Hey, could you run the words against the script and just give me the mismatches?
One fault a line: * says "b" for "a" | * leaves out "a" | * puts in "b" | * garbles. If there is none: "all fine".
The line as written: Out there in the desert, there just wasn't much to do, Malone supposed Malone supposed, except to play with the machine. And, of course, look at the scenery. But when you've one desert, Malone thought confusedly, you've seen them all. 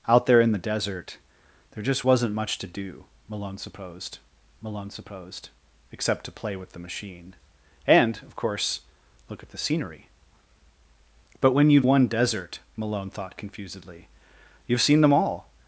all fine